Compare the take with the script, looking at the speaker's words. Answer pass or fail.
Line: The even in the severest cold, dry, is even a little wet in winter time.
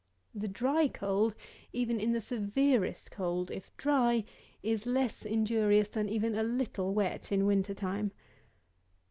fail